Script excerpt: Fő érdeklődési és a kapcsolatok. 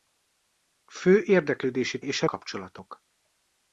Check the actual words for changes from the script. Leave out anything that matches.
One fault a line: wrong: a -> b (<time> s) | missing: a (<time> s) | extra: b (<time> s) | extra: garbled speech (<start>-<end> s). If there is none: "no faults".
no faults